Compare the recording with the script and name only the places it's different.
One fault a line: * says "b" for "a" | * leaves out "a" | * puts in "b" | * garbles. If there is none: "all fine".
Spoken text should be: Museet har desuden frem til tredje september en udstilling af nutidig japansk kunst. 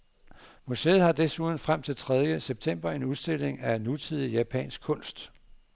all fine